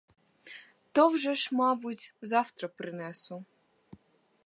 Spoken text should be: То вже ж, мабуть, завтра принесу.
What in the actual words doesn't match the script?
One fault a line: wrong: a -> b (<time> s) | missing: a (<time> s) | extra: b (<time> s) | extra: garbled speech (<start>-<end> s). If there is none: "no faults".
no faults